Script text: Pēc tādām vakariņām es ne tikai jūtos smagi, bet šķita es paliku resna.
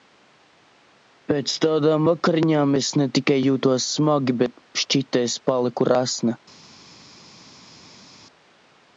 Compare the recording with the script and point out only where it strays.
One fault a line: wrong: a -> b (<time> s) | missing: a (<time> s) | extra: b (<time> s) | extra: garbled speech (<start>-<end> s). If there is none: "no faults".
no faults